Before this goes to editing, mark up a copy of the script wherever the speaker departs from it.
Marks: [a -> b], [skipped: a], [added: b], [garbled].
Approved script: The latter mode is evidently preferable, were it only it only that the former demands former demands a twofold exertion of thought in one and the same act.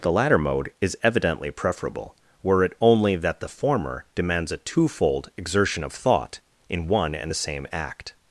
The latter mode is evidently preferable, were it only [skipped: it only] that the former demands [skipped: former demands] a twofold exertion of thought in one and the same act.